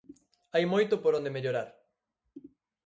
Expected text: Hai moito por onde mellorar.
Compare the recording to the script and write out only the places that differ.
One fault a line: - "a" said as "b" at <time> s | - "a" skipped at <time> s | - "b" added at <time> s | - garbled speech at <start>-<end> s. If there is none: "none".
none